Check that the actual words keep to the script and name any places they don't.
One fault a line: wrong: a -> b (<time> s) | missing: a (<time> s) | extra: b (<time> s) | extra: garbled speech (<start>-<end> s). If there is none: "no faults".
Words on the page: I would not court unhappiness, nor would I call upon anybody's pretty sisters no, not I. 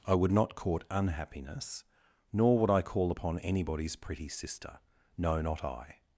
wrong: sisters -> sister (4.3 s)